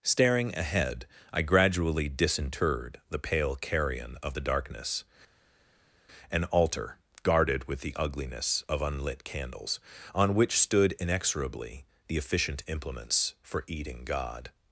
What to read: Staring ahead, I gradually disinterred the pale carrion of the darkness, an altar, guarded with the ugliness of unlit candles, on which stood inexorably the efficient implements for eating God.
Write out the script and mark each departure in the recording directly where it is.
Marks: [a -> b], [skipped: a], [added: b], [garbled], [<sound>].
Staring ahead, I gradually disinterred the pale carrion of the darkness, an altar, guarded with the ugliness of unlit candles, on which stood inexorably the efficient implements for eating God.